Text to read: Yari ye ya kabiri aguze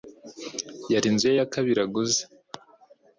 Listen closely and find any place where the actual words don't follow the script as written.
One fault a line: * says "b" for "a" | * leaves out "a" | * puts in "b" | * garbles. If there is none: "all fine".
* puts in "inzu"